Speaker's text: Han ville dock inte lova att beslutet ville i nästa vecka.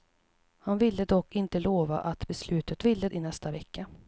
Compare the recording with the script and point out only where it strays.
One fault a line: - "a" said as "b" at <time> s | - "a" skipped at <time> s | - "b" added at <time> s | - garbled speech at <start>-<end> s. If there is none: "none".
none